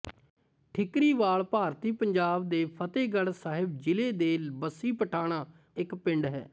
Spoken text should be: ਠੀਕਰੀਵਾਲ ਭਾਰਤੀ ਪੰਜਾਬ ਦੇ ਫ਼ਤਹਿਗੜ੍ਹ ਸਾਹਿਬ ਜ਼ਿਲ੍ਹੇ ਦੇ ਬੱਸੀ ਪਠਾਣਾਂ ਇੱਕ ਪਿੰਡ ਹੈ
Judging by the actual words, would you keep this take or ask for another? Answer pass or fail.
pass